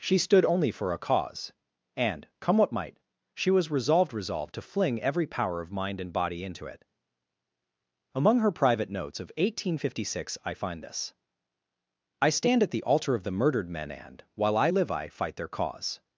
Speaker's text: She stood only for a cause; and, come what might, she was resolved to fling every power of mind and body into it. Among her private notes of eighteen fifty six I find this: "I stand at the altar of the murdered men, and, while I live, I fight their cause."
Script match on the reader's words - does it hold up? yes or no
no